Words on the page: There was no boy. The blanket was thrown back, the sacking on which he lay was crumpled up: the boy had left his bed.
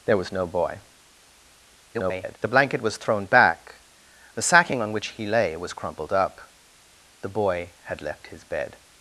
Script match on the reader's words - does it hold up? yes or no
no